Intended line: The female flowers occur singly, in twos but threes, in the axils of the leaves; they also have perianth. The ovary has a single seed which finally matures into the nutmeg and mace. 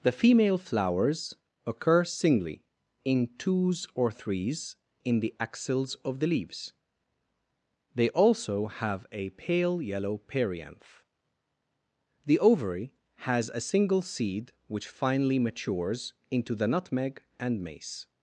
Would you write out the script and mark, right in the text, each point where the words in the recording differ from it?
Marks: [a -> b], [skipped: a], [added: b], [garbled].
The female flowers occur singly, in twos [but -> or] threes, in the axils of the leaves; they also have [added: a pale yellow] perianth. The ovary has a single seed which finally matures into the nutmeg and mace.